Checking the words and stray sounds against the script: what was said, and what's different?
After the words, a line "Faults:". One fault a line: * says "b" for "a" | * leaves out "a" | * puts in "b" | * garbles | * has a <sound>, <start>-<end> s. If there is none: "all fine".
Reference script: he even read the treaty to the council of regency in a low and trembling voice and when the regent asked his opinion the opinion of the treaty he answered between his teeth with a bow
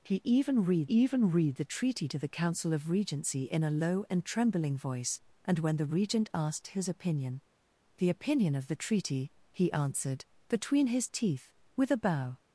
he even read even read the treaty to the council of regency in a low and trembling voice and when the regent asked his opinion the opinion of the treaty he answered between his teeth with a bow
Faults:
* puts in "even read"